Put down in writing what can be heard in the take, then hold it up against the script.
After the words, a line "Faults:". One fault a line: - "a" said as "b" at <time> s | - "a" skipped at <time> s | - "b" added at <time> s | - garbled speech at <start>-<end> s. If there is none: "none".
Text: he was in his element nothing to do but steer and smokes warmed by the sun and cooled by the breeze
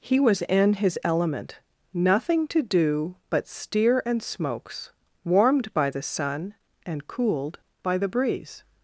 he was in his element nothing to do but steer and smokes warmed by the sun and cooled by the breeze
Faults:
none